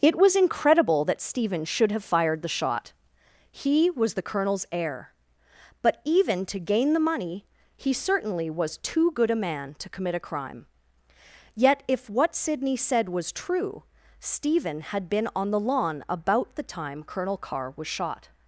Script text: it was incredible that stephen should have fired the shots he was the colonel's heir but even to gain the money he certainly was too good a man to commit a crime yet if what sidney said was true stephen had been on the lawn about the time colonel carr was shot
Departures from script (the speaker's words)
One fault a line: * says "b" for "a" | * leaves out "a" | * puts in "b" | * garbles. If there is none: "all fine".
* says "shot" for "shots"